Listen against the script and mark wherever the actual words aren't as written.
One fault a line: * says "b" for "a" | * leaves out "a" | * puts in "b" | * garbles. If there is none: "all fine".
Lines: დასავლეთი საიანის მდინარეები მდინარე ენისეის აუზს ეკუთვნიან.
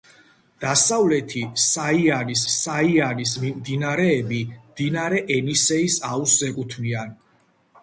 * puts in "საიანის"